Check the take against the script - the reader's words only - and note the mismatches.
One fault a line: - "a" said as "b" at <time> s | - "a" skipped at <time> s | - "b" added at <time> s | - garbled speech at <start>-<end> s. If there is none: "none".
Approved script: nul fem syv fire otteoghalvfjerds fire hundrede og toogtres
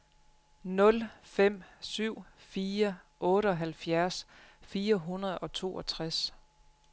none